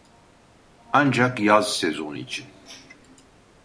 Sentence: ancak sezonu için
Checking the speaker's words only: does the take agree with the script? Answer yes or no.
no